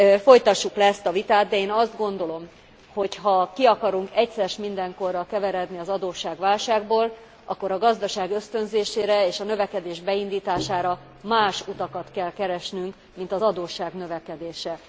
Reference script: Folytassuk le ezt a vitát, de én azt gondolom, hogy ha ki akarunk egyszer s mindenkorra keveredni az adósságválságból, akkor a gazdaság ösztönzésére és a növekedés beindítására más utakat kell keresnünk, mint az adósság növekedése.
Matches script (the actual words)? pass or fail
pass